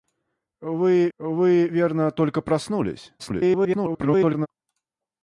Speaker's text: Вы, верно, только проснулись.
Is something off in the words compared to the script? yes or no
yes